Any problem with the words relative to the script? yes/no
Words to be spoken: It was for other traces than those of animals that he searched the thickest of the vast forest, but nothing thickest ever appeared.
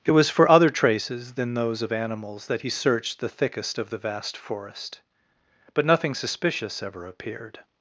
yes